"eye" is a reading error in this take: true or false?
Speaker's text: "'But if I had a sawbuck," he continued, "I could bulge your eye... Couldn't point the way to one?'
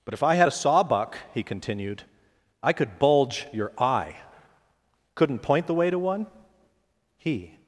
false